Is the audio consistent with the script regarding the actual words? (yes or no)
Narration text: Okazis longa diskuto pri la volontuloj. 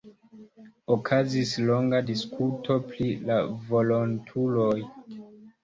yes